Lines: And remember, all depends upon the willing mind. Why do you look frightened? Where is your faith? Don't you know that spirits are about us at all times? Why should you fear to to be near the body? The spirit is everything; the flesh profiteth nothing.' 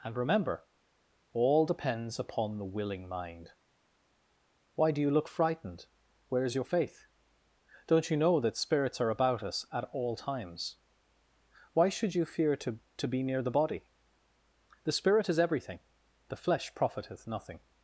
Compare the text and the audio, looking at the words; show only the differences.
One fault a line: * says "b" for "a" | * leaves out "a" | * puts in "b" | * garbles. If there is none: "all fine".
all fine